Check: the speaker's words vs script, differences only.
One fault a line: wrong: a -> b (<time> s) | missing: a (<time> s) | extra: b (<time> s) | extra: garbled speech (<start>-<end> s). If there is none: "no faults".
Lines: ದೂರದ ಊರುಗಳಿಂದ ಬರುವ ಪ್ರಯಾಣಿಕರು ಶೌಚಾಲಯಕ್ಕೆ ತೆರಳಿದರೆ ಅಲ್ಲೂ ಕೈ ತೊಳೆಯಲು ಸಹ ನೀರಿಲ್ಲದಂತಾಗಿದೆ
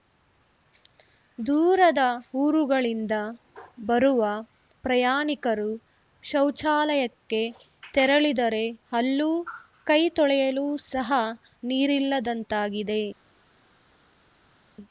no faults